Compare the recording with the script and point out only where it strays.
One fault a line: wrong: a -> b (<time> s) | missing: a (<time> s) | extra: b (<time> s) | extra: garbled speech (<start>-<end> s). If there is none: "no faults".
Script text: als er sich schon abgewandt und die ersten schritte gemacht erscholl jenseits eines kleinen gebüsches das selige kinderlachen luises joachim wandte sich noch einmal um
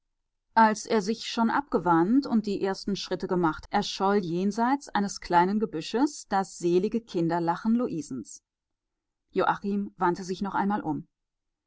no faults